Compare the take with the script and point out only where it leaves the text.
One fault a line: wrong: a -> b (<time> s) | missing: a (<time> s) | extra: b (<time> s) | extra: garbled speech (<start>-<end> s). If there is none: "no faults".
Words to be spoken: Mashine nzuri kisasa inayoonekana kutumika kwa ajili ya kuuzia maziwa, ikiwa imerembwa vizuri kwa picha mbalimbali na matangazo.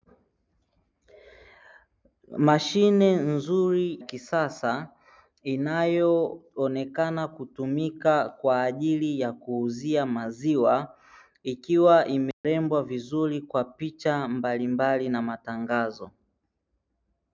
no faults